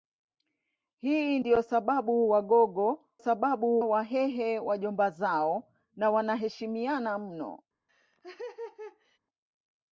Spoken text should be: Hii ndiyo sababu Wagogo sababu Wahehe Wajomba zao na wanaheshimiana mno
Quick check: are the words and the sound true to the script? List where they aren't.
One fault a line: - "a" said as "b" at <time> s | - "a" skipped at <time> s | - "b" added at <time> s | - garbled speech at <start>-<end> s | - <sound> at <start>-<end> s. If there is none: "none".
- laugh at 7.9-9.2 s